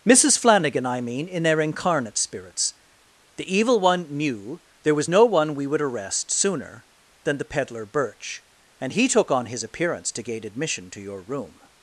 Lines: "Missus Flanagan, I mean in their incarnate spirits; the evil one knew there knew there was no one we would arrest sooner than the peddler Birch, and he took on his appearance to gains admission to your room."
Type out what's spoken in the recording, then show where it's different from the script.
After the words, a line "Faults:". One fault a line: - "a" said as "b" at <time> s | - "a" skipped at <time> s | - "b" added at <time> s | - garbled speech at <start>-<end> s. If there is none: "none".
"Missus Flanagan, I mean in their incarnate spirits; the evil one knew there was no one we would arrest sooner than the peddler Birch, and he took on his appearance to gain admission to your room."
Faults:
- "knew there" skipped at 5.0 s
- "gains" said as "gain" at 10.2 s